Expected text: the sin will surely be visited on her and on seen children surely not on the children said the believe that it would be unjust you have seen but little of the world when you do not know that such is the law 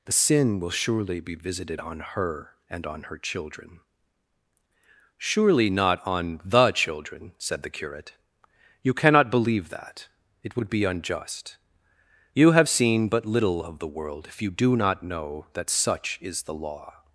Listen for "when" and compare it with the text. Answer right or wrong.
wrong